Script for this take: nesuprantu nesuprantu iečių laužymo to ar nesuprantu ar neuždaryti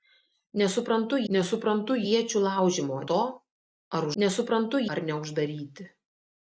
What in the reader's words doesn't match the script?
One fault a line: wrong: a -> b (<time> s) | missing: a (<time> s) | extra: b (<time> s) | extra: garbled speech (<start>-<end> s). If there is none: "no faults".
no faults